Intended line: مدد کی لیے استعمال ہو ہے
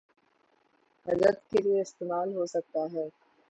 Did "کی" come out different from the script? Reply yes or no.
yes